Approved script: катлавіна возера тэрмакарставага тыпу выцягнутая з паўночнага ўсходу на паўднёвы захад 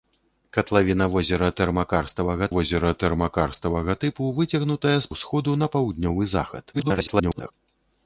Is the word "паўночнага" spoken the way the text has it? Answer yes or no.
no